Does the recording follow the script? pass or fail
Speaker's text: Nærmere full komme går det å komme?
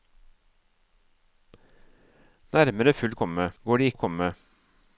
pass